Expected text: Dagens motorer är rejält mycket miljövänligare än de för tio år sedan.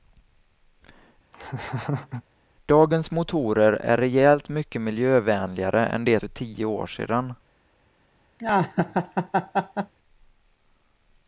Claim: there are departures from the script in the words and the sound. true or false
true